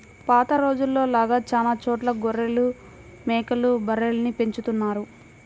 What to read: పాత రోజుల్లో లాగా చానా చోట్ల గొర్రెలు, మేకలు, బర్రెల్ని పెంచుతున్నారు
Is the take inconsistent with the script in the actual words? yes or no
no